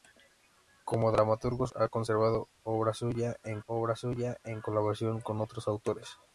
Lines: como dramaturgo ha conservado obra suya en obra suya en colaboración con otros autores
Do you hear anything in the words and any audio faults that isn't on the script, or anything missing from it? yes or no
no